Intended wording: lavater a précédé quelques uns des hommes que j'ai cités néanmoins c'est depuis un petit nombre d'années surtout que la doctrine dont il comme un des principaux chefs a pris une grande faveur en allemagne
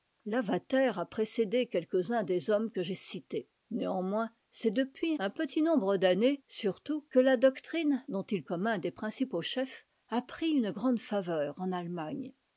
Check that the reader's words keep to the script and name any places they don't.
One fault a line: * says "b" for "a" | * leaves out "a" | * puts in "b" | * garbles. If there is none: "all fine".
all fine